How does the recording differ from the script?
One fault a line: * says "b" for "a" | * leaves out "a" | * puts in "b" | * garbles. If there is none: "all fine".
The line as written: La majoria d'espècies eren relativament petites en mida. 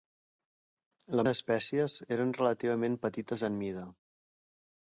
* leaves out "majoria"